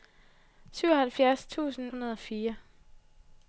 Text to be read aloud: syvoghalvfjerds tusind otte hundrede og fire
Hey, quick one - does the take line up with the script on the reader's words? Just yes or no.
no